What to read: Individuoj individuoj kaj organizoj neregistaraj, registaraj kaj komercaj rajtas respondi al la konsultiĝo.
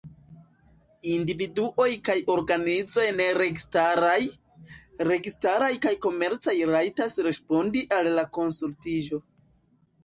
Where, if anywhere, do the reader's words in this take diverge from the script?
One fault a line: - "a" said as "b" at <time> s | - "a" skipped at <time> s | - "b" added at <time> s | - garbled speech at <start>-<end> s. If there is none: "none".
- "individuoj" skipped at 1.9 s